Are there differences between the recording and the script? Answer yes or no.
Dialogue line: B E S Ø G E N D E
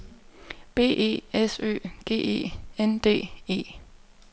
no